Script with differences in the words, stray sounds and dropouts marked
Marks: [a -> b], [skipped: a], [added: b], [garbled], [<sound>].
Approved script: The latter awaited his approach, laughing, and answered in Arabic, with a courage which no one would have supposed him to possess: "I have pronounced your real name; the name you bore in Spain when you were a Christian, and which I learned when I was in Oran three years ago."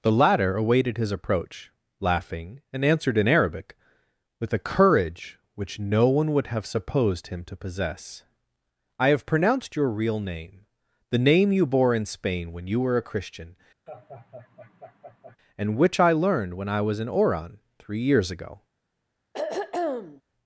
The latter awaited his approach, laughing, and answered in Arabic, with a courage which no one would have supposed him to possess: "I have pronounced your real name; the name you bore in Spain when you were a Christian, [laugh] and which I learned when I was in Oran three years ago." [throat clearing]